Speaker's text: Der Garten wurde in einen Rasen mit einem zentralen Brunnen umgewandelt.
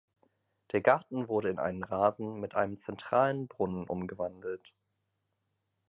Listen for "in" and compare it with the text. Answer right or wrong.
right